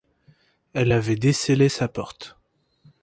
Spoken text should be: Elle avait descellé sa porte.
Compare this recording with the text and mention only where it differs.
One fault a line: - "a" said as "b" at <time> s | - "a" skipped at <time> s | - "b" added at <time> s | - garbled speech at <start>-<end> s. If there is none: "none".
none